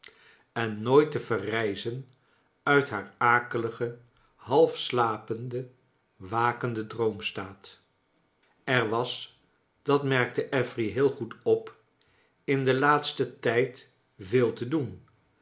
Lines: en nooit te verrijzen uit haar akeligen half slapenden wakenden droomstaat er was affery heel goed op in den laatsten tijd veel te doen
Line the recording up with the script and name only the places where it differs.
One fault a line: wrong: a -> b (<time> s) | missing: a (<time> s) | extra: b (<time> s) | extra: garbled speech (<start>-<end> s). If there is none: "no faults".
extra: dat merkte (9.8 s)